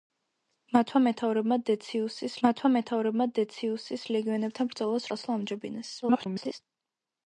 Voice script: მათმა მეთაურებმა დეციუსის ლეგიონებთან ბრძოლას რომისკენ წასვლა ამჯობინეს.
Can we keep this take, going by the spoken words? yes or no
no